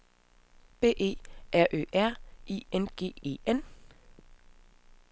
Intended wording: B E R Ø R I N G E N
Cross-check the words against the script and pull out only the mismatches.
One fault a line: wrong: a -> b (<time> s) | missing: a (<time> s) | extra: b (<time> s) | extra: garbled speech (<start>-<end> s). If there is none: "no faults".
no faults